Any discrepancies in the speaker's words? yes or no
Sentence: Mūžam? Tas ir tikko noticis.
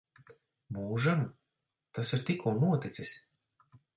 no